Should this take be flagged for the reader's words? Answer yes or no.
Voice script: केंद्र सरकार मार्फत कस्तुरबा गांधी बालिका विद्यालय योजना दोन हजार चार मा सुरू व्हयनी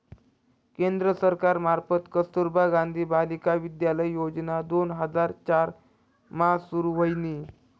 no